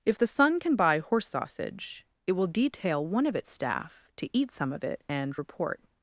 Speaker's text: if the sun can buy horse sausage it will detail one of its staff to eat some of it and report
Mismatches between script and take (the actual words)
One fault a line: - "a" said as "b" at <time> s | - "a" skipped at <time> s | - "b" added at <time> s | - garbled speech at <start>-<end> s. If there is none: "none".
none